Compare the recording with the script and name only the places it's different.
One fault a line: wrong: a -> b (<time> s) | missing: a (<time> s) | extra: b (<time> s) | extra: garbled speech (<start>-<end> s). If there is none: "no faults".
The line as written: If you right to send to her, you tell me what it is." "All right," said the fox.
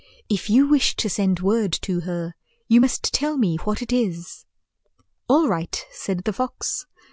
wrong: right -> wish (0.7 s)
extra: word (1.4 s)
extra: must (2.8 s)